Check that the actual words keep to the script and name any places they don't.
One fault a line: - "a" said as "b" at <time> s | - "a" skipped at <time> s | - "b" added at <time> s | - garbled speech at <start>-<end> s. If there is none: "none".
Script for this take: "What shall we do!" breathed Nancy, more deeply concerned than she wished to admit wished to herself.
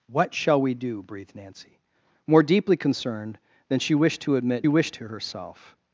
none